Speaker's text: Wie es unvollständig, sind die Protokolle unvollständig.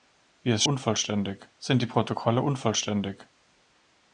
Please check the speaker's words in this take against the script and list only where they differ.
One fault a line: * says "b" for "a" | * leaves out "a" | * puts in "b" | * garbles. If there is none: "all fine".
all fine